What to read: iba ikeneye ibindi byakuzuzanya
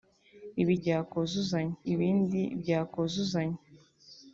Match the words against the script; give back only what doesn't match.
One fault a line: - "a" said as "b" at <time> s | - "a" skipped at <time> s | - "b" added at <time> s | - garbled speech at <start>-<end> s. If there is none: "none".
- "ikeneye" said as "byakuzuzanya" at 0.8 s